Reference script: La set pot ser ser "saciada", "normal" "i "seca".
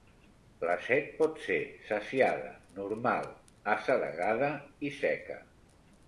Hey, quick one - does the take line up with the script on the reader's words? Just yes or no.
no